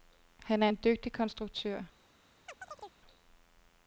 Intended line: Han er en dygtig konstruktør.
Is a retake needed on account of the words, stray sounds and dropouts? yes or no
yes